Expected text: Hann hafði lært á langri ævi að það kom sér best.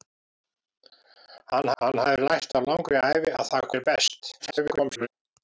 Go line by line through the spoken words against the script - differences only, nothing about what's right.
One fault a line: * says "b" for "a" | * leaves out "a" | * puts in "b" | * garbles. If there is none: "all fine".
* puts in "hann"
* leaves out "kom"
* garbles